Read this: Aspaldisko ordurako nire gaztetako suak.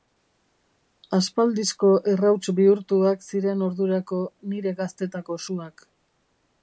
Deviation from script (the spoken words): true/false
true